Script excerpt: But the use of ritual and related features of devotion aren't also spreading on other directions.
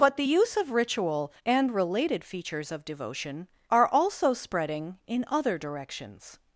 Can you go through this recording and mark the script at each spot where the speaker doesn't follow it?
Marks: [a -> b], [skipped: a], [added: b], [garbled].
But the use of ritual and related features of devotion [aren't -> are] also spreading [on -> in] other directions.